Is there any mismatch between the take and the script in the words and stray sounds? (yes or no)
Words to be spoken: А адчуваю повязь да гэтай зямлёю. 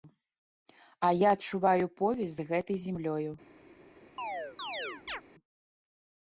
yes